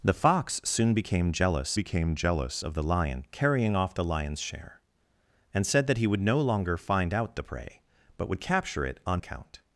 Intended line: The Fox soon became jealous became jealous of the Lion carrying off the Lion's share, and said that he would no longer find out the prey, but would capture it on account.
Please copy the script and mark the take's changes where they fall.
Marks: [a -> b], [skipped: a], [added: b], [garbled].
The Fox soon became jealous became jealous of the Lion carrying off the Lion's share, and said that he would no longer find out the prey, but would capture it on account.